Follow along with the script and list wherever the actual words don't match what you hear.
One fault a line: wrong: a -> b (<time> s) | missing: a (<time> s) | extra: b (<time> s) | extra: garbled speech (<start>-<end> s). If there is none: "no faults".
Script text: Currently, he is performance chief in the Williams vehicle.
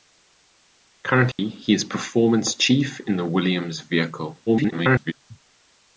extra: garbled speech (4.5-5.1 s)